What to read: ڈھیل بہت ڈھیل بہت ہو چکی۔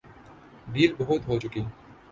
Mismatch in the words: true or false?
true